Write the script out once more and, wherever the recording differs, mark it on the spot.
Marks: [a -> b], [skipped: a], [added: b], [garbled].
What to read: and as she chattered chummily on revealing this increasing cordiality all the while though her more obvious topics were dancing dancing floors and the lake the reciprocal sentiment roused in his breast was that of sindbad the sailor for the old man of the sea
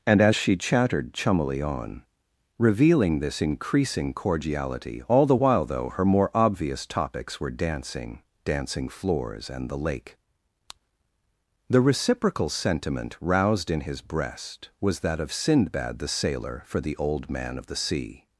and as she chattered chummily on revealing this increasing cordiality all the while though her more obvious topics were dancing dancing floors and the lake the reciprocal sentiment roused in his breast was that of sindbad the sailor for the old man of the sea